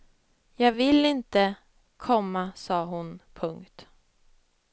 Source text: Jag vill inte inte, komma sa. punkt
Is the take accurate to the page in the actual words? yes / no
no